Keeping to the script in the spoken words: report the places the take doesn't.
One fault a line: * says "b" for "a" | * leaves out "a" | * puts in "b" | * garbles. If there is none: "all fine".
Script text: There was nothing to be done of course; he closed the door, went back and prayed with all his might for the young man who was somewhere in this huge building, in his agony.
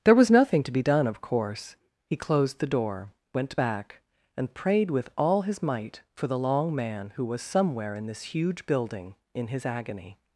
* says "long" for "young"